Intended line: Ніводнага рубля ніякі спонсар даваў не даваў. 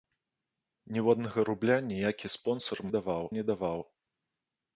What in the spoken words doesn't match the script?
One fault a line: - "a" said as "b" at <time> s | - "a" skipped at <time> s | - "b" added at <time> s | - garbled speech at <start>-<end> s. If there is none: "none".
none